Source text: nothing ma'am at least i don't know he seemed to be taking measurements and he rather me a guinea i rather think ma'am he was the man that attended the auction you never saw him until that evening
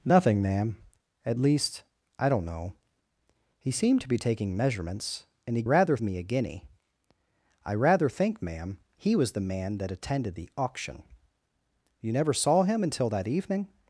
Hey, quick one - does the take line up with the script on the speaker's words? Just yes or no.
yes